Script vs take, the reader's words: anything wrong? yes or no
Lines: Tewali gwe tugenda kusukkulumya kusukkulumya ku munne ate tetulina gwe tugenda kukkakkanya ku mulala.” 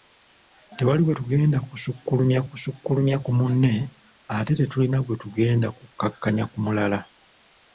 no